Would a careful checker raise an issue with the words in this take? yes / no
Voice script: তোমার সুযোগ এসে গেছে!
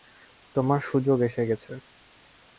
no